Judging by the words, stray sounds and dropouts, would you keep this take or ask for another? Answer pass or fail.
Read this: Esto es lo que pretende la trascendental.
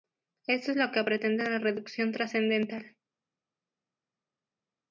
fail